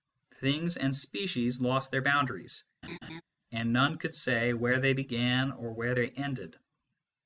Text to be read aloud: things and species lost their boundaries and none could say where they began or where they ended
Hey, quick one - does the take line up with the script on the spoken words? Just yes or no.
yes